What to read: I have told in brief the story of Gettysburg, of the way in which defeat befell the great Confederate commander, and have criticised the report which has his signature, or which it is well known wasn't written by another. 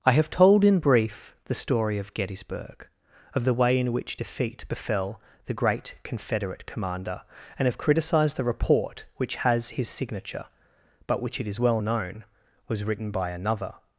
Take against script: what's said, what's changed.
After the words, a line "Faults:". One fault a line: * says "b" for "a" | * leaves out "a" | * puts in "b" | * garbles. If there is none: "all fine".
I have told in brief the story of Gettysburg, of the way in which defeat befell the great Confederate commander, and have criticised the report which has his signature, but which it is well known was written by another.
Faults:
* says "but" for "or"
* says "was" for "wasn't"